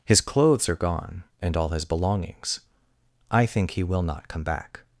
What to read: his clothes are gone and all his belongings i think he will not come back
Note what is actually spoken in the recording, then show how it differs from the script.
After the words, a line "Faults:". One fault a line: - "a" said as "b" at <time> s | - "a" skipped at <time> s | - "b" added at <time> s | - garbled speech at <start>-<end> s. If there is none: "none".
his clothes are gone and all his belongings i think he will not come back
Faults:
none